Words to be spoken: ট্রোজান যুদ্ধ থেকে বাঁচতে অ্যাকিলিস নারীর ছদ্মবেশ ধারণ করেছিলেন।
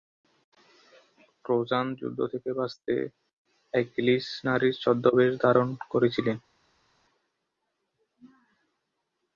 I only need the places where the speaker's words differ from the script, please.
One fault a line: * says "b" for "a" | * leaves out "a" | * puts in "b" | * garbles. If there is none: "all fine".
all fine